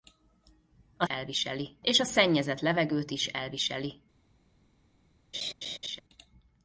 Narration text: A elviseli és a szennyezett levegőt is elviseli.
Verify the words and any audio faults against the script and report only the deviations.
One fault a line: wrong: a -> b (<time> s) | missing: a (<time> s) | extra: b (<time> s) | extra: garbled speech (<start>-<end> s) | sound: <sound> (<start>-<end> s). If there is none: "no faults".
sound: laugh (5.3-6.0 s)